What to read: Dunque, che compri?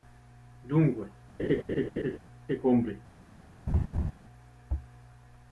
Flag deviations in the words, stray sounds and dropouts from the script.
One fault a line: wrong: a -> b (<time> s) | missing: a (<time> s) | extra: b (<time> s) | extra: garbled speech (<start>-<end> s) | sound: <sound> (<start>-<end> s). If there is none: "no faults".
sound: laugh (1.4-2.2 s)
sound: laugh (3.7-4.1 s)